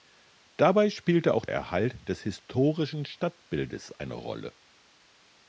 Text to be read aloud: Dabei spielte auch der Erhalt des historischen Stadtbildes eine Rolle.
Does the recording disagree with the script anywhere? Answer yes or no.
yes